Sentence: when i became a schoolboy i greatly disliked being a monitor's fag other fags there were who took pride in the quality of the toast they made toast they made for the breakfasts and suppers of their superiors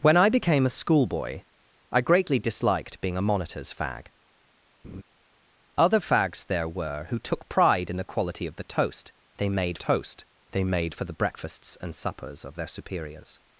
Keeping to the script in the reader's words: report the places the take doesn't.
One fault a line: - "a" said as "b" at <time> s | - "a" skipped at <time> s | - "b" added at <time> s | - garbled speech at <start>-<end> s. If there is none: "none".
none